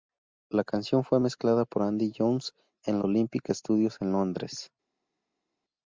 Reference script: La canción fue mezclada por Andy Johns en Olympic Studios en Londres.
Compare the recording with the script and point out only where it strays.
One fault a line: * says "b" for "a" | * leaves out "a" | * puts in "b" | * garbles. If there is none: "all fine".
all fine